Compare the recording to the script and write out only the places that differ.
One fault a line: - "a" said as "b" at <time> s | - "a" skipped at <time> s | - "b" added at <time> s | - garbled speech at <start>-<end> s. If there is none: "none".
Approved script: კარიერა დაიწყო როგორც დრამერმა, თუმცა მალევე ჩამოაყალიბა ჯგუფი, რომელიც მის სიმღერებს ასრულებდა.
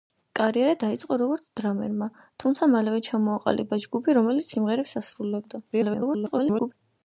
- "მის" skipped at 4.5 s
- garbled speech at 5.7-6.7 s